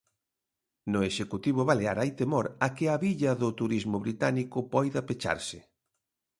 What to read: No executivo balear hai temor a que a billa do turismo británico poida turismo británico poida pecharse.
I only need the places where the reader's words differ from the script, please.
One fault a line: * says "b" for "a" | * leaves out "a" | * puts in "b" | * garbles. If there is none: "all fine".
* leaves out "turismo británico poida"